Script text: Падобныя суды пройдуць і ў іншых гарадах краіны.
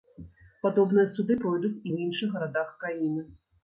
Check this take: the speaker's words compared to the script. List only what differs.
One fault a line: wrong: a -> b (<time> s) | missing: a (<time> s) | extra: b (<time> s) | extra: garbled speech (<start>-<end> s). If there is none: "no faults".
no faults